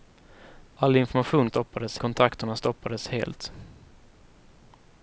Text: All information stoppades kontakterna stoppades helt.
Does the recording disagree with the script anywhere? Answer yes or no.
no